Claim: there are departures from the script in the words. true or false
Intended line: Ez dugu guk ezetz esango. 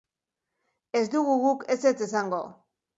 false